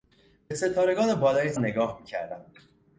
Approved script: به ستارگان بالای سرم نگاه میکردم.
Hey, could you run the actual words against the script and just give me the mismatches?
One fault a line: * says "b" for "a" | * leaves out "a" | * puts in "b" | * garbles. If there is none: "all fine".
* leaves out "سرم"